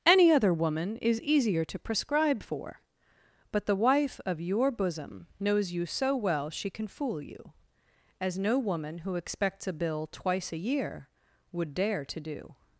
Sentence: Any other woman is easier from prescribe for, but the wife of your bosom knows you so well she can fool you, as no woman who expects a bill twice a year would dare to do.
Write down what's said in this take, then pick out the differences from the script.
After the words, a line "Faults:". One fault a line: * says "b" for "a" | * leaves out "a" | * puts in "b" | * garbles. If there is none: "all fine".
Any other woman is easier to prescribe for, but the wife of your bosom knows you so well she can fool you, as no woman who expects a bill twice a year would dare to do.
Faults:
* says "to" for "from"